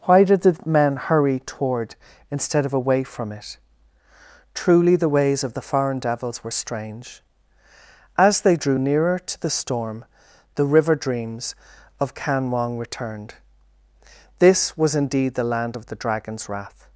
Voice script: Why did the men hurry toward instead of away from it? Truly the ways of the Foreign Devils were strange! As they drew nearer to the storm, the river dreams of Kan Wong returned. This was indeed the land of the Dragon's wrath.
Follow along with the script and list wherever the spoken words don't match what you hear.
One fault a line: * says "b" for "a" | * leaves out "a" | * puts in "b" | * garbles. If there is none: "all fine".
all fine